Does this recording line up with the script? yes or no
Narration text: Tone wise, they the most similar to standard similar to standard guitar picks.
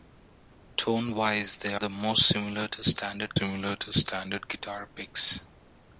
yes